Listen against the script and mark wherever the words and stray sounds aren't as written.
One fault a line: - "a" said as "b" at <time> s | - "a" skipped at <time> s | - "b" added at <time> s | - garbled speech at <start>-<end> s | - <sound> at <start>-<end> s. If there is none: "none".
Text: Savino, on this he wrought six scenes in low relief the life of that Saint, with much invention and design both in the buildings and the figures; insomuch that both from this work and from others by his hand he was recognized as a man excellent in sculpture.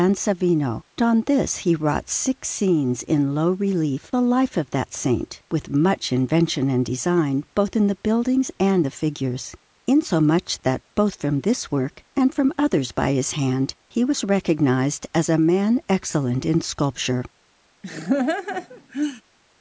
- laugh at 17.8-19.2 s